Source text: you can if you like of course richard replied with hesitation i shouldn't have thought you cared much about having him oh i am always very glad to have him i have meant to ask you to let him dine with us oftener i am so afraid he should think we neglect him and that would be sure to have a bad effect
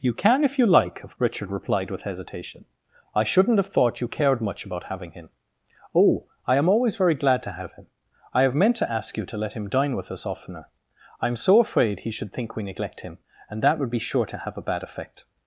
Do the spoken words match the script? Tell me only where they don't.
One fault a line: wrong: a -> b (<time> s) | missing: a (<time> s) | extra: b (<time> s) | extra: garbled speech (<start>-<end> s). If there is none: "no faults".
missing: course (1.1 s)